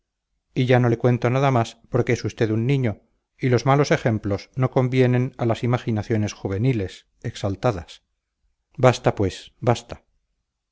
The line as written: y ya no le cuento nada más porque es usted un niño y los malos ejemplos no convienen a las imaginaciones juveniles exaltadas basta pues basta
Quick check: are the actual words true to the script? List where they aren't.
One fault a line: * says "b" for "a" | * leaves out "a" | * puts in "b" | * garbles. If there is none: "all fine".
all fine